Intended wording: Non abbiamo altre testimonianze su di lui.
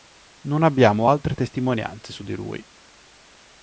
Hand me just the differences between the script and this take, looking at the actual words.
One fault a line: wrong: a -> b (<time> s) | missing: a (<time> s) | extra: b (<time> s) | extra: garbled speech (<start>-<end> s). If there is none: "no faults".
no faults